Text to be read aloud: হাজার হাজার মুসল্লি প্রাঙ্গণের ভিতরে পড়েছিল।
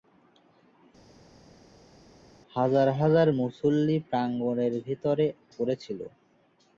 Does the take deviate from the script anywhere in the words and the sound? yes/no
no